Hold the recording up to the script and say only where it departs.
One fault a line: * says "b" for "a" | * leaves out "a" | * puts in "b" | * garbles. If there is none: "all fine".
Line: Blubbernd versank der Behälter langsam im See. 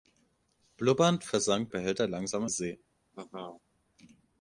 * leaves out "der"
* leaves out "im"